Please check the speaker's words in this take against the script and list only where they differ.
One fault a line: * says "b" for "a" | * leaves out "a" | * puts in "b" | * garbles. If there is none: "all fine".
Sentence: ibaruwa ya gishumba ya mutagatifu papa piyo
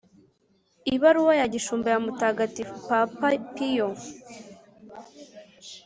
all fine